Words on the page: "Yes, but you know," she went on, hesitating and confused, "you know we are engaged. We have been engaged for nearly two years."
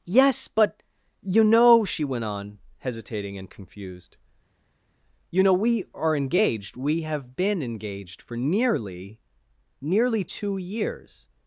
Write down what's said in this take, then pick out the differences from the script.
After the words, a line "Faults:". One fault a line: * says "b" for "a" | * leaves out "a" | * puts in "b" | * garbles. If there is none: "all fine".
"Yes, but you know," she went on, hesitating and confused, "you know we are engaged. We have been engaged for nearly nearly two years."
Faults:
* puts in "nearly"